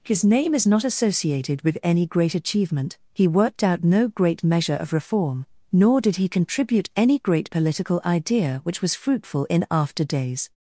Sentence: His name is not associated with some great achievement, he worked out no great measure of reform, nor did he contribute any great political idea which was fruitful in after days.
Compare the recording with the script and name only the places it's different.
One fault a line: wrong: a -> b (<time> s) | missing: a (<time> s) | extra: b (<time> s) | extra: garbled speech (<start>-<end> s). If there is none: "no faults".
wrong: some -> any (1.8 s)